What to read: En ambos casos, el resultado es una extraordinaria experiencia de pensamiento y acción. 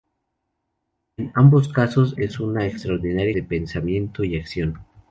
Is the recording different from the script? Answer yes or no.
yes